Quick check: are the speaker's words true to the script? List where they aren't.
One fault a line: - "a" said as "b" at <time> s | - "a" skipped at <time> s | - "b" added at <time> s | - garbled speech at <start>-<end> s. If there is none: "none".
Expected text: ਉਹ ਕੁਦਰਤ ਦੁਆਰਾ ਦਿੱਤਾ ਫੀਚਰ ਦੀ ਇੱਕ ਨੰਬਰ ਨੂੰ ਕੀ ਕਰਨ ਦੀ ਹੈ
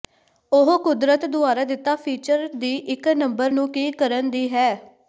none